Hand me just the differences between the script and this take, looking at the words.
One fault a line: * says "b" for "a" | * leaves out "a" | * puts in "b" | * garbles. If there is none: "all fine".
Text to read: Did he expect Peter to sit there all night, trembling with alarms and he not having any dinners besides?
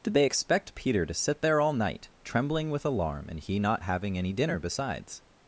* says "they" for "he"
* says "alarm" for "alarms"
* says "dinner" for "dinners"